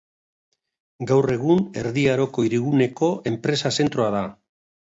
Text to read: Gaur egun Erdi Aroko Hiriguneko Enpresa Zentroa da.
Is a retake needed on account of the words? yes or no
no